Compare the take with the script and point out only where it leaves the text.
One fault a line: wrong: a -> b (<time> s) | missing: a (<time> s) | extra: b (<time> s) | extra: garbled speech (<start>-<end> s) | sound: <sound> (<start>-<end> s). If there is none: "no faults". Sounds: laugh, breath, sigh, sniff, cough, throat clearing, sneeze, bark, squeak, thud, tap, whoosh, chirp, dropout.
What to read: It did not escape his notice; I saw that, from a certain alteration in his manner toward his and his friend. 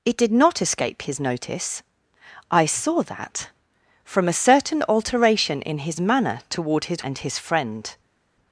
no faults